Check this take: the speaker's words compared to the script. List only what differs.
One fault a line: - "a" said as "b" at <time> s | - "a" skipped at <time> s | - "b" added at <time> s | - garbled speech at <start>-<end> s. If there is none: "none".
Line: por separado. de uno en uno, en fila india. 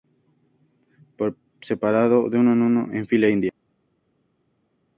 none